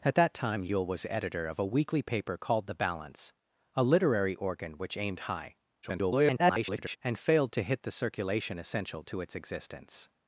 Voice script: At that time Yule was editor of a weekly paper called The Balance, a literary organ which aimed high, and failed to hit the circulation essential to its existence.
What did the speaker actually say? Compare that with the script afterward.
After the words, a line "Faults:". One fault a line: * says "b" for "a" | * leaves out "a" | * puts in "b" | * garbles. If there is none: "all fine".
At that time Yule was editor of a weekly paper called The Balance, a literary organ which aimed high, [garbled] and failed to hit the circulation essential to its existence.
Faults:
* garbles